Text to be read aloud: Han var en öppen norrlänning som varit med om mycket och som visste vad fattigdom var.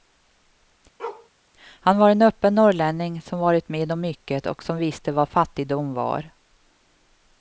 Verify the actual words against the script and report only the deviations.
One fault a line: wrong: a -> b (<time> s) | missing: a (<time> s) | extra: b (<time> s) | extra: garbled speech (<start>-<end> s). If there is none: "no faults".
no faults